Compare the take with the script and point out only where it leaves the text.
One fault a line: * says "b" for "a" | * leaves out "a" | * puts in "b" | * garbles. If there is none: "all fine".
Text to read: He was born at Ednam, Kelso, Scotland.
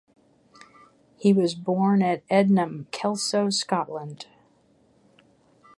all fine